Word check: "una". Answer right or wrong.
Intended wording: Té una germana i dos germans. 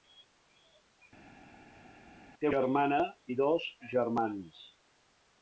wrong